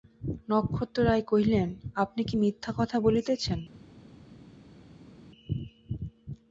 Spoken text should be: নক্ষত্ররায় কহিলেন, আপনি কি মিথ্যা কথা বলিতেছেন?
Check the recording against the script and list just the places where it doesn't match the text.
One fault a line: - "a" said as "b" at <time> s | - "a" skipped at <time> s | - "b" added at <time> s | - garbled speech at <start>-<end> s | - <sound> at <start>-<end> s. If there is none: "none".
none